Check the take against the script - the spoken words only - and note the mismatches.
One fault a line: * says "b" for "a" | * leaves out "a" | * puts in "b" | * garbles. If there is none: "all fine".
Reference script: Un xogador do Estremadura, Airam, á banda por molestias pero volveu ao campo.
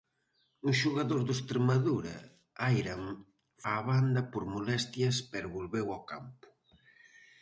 all fine